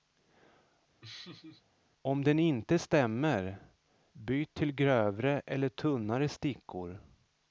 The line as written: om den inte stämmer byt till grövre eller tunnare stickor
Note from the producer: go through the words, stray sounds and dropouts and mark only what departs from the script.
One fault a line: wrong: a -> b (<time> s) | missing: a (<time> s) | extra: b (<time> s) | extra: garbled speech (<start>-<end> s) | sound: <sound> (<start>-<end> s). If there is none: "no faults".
sound: laugh (1.0-1.6 s)